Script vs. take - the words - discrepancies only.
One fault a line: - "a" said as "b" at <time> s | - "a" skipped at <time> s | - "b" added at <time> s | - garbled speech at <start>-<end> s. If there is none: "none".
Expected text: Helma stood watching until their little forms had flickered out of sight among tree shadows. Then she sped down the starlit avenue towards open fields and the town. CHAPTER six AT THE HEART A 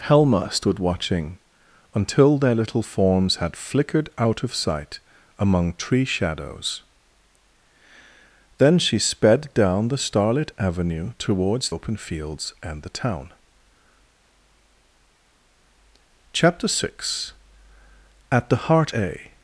none